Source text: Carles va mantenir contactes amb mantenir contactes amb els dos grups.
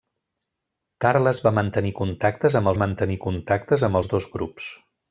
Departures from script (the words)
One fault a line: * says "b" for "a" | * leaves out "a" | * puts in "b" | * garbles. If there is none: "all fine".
all fine